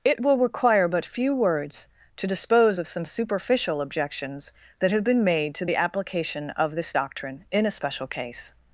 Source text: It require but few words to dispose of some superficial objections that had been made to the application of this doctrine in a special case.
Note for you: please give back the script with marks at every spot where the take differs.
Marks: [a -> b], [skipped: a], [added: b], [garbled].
It [added: will] require but few words to dispose of some superficial objections that [had -> have] been made to the application of this doctrine in a special case.